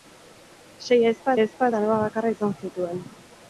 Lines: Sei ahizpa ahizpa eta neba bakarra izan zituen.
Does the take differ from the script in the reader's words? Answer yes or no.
no